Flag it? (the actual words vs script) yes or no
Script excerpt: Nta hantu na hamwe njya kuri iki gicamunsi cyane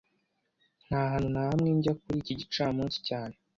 no